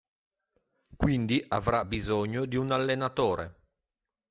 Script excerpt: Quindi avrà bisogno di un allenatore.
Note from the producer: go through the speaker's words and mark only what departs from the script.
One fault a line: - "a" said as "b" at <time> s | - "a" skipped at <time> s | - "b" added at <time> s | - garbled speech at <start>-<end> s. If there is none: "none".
none